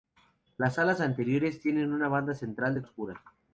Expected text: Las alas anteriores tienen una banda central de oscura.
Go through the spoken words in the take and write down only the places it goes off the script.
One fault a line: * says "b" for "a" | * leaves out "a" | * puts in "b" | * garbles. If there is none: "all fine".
all fine